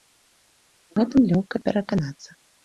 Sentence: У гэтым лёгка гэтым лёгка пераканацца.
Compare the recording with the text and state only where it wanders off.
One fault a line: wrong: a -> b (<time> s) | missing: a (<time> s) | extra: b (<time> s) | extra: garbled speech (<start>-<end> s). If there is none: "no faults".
missing: гэтым лёгка (1.6 s)